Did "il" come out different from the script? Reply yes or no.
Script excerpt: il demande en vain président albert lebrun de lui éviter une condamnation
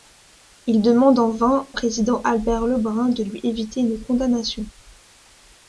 no